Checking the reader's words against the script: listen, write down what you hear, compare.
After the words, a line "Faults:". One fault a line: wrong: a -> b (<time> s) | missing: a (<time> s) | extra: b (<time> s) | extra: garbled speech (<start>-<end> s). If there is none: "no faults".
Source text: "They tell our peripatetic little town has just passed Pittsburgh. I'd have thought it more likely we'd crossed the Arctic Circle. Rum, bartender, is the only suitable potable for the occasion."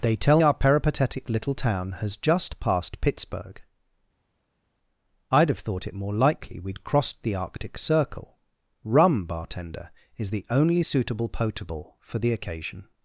"They tell our peripatetic little town has just passed Pittsburgh. I'd have thought it more likely we'd crossed the Arctic Circle. Rum, bartender, is the only suitable potable for the occasion."
Faults:
no faults